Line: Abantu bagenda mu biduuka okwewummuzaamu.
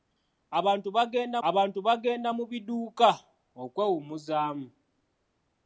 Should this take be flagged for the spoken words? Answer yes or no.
yes